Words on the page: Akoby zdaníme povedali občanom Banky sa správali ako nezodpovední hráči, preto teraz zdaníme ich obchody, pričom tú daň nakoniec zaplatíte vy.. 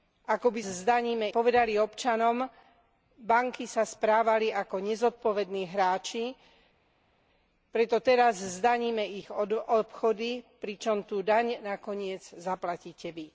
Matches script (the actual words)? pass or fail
pass